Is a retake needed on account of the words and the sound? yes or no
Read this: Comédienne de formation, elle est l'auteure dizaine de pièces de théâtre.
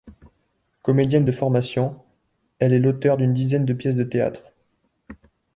yes